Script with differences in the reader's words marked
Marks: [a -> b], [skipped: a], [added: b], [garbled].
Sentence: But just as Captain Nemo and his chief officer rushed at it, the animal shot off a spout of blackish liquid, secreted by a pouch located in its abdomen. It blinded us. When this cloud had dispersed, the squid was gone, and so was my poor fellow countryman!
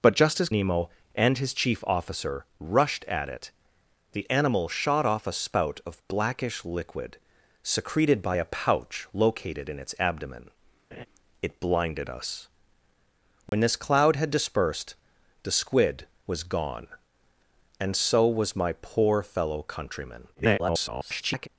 But just as [skipped: Captain] Nemo and his chief officer rushed at it, the animal shot off a spout of blackish liquid, secreted by a pouch located in its abdomen. It blinded us. When this cloud had dispersed, the squid was gone, and so was my poor fellow countryman! [garbled]